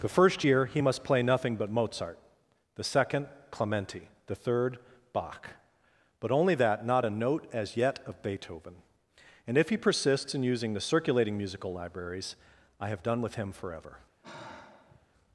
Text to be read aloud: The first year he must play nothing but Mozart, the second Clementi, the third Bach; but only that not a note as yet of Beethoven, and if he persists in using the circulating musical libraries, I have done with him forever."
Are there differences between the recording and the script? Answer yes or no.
no